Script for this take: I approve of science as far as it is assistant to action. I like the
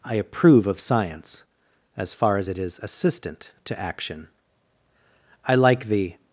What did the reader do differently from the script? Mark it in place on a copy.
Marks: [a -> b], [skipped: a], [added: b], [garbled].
I approve of science as far as it is assistant to action. I like the